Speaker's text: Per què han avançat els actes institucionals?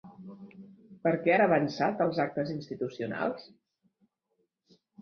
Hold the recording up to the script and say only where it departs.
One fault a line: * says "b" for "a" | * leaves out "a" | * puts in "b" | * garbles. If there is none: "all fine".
all fine